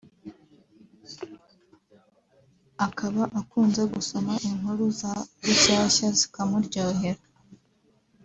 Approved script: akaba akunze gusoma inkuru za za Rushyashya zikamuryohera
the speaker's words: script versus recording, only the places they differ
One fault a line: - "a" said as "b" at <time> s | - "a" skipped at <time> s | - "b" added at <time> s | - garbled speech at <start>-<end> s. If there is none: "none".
- "za" skipped at 5.1 s